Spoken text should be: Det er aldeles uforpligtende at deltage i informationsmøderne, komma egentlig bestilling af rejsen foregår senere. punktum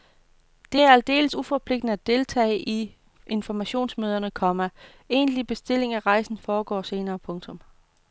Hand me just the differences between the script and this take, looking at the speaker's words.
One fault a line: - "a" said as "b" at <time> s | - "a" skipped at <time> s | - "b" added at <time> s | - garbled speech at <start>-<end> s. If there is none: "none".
none